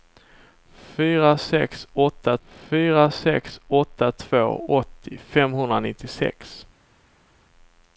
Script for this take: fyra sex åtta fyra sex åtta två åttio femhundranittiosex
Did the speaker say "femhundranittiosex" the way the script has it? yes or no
yes